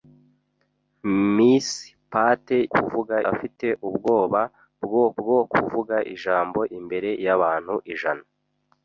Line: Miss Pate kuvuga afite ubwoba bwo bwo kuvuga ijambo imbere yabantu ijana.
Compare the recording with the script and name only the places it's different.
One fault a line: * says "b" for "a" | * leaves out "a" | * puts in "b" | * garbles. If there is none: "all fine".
all fine